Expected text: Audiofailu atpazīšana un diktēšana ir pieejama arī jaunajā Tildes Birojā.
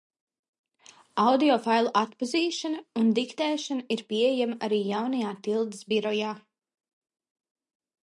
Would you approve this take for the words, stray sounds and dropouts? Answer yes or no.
yes